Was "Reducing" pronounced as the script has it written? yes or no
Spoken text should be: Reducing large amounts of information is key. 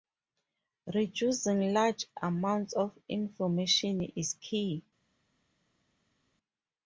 yes